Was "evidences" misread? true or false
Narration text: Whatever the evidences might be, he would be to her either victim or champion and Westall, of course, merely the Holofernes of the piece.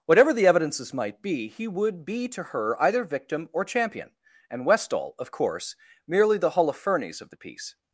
false